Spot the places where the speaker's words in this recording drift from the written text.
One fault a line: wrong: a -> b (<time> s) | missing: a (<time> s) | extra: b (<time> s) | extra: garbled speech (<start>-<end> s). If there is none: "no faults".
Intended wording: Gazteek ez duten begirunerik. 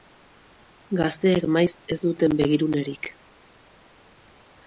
extra: maiz (1.6 s)